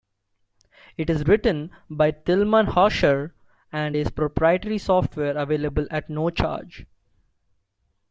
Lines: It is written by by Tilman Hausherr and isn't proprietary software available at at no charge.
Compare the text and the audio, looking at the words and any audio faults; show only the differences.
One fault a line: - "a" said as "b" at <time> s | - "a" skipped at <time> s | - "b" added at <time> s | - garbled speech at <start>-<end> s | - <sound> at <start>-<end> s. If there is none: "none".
- "by" skipped at 2.1 s
- "isn't" said as "is" at 3.9 s
- "at" skipped at 6.1 s